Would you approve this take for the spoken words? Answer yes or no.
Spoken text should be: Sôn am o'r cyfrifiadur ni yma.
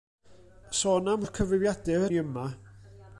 yes